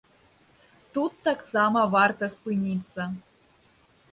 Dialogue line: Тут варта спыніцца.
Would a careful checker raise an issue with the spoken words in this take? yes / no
yes